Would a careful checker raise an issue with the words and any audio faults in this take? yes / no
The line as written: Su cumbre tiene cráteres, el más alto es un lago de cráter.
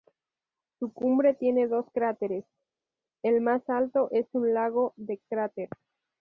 yes